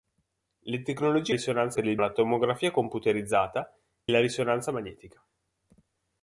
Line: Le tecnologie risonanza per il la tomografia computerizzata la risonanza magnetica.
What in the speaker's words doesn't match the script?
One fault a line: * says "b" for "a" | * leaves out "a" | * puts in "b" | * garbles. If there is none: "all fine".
all fine